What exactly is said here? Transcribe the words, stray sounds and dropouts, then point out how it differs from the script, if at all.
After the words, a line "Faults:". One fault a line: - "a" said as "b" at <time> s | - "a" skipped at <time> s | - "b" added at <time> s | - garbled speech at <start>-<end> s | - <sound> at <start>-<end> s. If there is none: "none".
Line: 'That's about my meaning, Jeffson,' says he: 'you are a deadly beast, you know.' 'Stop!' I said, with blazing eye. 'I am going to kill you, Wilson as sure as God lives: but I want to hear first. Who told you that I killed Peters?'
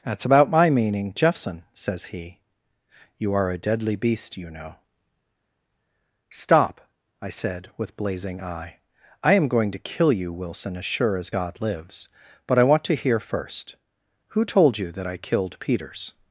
'That's about my meaning, Jeffson,' says he: 'you are a deadly beast, you know.' 'Stop!' I said, with blazing eye. 'I am going to kill you, Wilson as sure as God lives: but I want to hear first. Who told you that I killed Peters?'
Faults:
none